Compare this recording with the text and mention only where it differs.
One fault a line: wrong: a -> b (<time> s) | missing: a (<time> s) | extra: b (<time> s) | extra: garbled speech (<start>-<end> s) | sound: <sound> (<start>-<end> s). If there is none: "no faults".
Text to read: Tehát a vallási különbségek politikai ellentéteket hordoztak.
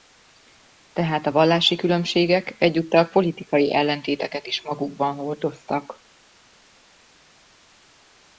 extra: egyúttal (2.6 s)
extra: is magukban (4.5 s)